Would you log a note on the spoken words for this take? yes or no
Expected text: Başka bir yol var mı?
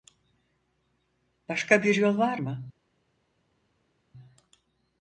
no